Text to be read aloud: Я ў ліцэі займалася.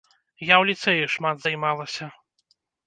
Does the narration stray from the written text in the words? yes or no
yes